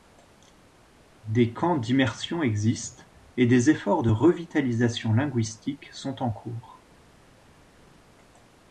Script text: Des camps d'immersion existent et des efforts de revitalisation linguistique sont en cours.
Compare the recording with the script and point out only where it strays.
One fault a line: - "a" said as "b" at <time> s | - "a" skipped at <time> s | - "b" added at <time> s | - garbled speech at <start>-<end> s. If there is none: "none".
none